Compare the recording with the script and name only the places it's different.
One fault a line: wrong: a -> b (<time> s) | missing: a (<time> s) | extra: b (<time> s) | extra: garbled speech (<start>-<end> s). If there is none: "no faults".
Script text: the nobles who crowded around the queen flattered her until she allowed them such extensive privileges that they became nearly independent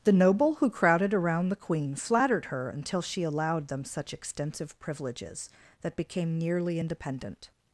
wrong: nobles -> noble (0.1 s)
missing: they (6.0 s)